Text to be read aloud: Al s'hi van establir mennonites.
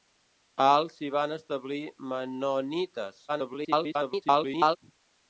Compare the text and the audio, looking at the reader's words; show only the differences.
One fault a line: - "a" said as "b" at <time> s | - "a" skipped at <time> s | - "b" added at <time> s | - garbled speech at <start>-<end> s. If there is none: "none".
- garbled speech at 3.3-4.8 s